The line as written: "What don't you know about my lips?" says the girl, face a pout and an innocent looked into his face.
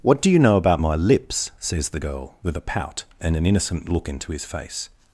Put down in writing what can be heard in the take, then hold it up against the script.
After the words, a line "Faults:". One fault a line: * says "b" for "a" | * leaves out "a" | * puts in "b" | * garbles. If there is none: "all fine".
"What do you know about my lips?" says the girl, with a pout and an innocent look into his face.
Faults:
* says "do" for "don't"
* says "with" for "face"
* says "look" for "looked"